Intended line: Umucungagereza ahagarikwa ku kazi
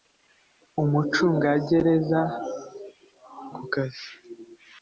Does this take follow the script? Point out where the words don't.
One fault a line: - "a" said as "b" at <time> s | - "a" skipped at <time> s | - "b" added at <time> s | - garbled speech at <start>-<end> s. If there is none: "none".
- "ahagarikwa" skipped at 2.2 s